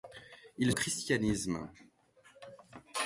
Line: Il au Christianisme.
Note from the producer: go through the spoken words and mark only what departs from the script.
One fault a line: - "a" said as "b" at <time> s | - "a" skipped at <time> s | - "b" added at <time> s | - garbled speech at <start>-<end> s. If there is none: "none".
none